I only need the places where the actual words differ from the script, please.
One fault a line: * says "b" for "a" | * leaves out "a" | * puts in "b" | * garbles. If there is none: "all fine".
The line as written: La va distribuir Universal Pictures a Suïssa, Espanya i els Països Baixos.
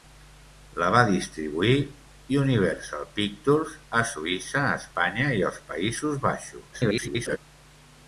* garbles